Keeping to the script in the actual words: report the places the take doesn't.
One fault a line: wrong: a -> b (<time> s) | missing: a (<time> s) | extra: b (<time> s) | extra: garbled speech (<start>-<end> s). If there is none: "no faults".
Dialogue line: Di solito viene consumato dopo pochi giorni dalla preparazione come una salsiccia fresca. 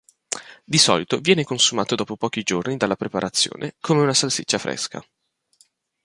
no faults